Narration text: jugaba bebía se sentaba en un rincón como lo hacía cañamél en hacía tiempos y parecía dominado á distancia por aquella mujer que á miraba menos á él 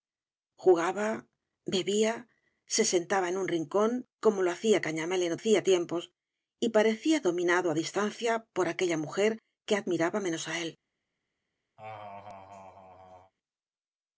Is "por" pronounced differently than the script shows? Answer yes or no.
no